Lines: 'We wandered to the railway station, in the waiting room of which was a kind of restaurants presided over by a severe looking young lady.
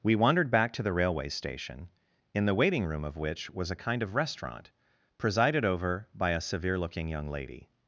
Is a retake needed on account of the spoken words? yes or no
yes